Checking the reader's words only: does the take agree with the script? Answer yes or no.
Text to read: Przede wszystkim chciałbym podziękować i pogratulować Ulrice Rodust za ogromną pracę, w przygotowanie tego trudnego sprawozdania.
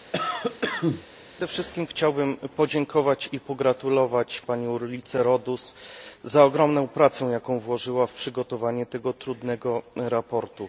no